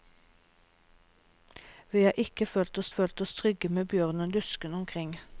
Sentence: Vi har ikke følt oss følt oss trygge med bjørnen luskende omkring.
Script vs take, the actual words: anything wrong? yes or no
no